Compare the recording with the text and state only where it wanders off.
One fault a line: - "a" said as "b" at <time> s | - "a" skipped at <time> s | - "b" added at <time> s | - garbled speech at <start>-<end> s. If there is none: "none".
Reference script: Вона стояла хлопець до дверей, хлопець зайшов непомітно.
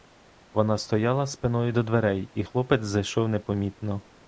- "хлопець" said as "спиною" at 1.3 s
- "і" added at 2.3 s